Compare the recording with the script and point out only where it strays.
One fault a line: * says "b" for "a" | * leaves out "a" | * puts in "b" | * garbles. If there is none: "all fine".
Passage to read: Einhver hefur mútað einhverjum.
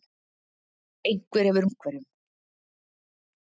* leaves out "mútað"